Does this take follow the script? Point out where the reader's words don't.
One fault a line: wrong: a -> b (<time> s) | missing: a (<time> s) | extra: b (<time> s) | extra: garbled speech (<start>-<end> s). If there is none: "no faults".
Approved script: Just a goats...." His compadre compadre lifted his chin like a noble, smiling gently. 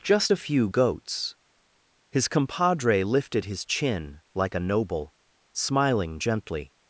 extra: few (0.4 s)
missing: compadre (3.0 s)